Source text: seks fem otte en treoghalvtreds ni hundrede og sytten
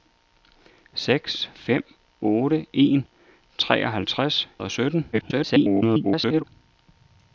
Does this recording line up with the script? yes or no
no